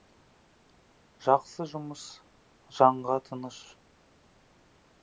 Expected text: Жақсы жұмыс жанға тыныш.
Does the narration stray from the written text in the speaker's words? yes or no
no